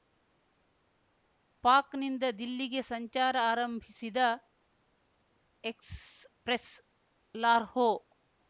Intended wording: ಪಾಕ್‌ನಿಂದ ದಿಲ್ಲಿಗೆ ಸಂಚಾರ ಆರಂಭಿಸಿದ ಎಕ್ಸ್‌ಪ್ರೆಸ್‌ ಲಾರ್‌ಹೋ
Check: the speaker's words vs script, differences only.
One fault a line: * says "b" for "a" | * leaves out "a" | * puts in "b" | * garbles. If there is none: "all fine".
all fine